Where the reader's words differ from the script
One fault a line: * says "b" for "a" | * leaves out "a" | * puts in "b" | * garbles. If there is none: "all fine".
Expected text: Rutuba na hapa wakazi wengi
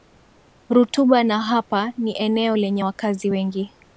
* puts in "ni eneo lenye"